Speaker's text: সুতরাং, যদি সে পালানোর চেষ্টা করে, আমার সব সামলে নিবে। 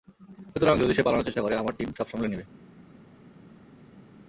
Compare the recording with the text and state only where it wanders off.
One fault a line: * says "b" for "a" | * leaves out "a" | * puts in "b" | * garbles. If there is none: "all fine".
* puts in "টিম"